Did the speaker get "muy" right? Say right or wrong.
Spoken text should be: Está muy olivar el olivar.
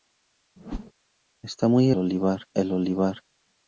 right